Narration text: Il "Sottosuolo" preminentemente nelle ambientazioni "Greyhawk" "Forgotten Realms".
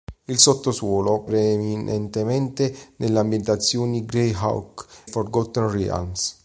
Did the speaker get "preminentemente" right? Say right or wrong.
right